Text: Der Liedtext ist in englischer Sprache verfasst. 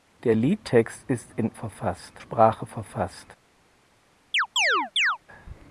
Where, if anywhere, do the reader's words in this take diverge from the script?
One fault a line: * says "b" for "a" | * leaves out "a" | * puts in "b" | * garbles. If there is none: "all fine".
* says "verfasst" for "englischer"